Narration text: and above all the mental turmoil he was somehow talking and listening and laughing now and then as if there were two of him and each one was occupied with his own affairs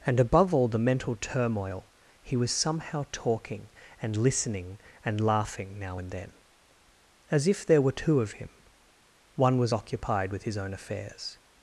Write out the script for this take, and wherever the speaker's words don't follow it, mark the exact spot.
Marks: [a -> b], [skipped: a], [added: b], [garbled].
and above all the mental turmoil he was somehow talking and listening and laughing now and then as if there were two of him [skipped: and each] one was occupied with his own affairs